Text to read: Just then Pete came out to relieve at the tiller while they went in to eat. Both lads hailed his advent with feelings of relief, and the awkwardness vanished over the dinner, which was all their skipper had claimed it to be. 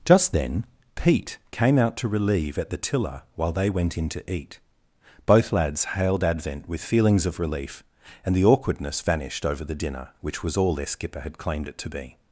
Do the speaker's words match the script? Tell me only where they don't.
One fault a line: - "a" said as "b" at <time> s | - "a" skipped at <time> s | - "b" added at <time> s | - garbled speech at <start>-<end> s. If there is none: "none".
- "his" skipped at 6.2 s